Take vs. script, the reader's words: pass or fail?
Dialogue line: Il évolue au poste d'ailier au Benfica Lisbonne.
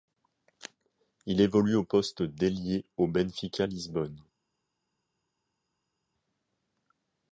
pass